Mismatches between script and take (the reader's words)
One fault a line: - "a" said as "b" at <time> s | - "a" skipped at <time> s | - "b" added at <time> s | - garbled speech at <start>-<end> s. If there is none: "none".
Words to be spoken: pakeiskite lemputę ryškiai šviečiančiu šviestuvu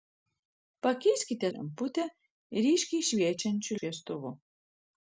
none